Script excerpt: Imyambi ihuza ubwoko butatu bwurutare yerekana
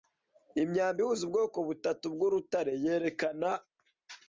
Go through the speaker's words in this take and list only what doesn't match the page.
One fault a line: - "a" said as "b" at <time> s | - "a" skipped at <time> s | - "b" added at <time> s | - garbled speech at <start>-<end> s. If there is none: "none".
none